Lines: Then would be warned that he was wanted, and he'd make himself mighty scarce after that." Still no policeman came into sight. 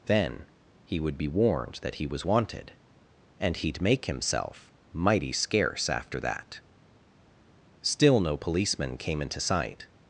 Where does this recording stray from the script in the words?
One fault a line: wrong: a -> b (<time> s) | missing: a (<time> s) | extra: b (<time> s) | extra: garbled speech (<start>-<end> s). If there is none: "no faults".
extra: he (0.8 s)